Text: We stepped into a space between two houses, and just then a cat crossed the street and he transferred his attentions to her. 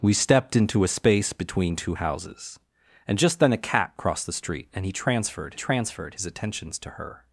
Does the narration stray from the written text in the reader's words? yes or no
yes